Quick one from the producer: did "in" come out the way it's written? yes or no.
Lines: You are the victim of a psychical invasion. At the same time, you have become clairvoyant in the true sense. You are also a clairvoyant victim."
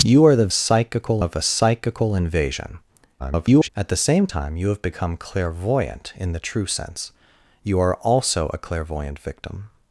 yes